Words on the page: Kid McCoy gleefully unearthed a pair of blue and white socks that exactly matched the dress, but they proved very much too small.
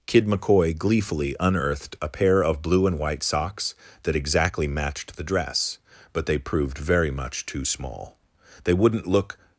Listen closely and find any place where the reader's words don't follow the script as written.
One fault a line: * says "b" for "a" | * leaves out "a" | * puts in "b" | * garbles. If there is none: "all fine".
* puts in "They wouldn't look"